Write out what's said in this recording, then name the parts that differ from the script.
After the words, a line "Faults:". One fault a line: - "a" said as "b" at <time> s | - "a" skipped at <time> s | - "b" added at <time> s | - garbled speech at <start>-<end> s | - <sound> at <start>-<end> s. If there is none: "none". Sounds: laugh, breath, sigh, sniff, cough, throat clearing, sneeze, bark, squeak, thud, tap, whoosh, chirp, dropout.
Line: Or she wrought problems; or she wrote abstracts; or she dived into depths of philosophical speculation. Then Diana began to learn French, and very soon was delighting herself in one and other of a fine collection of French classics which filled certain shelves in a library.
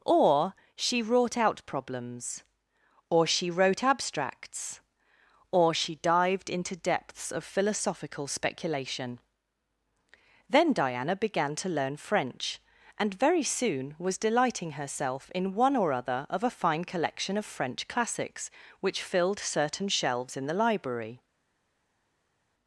Or she wrought out problems; or she wrote abstracts; or she dived into depths of philosophical speculation. Then Diana began to learn French, and very soon was delighting herself in one or other of a fine collection of French classics which filled certain shelves in the library.
Faults:
- "out" added at 1.4 s
- "and" said as "or" at 15.8 s
- "a" said as "the" at 20.5 s